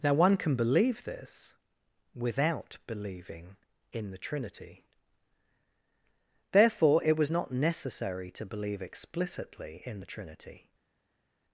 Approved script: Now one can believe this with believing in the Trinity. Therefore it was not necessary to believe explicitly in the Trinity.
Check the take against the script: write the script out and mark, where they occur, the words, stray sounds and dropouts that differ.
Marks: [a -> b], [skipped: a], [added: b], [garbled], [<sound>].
Now one can believe this [with -> without] believing in the Trinity. Therefore it was not necessary to believe explicitly in the Trinity.